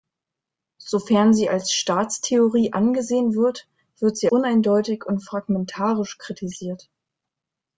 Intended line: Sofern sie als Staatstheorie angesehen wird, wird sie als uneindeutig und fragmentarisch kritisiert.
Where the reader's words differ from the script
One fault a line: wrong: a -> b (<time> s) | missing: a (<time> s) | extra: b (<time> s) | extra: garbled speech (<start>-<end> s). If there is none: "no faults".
missing: als (4.3 s)